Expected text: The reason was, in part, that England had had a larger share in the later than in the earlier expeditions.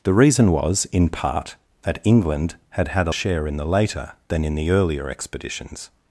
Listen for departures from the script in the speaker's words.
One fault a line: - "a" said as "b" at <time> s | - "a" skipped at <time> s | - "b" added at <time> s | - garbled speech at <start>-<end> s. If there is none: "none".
- "larger" skipped at 3.1 s